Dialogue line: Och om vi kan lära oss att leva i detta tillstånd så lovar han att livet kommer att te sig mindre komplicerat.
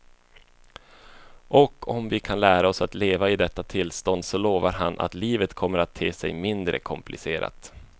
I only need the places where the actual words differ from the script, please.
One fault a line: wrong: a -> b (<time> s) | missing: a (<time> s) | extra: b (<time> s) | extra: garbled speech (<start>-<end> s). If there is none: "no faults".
no faults